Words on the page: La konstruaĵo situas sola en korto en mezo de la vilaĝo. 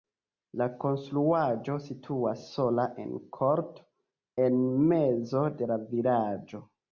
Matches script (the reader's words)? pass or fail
pass